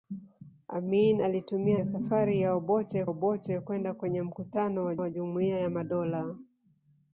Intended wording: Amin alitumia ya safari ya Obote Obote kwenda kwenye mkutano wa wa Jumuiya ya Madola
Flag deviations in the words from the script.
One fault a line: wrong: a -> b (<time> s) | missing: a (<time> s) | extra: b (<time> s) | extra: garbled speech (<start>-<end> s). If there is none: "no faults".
no faults